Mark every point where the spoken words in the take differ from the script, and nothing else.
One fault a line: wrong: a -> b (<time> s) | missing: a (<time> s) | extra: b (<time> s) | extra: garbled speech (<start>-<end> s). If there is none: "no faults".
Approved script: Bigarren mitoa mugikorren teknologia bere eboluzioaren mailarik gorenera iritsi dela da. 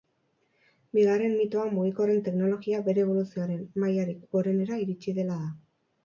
no faults